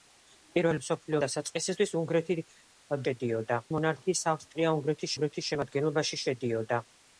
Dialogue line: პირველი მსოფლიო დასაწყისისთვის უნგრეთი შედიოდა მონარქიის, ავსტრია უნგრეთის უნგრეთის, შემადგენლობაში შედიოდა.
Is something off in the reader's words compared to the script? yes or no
no